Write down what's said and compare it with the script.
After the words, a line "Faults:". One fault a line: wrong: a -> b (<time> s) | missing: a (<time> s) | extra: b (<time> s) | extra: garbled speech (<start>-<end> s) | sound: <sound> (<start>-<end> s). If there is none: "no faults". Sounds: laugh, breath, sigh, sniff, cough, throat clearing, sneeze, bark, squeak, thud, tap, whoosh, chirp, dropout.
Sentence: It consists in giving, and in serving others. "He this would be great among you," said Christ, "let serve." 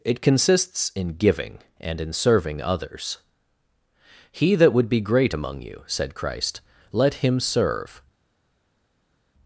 It consists in giving, and in serving others. "He that would be great among you," said Christ, "let him serve."
Faults:
wrong: this -> that (4.5 s)
extra: him (7.2 s)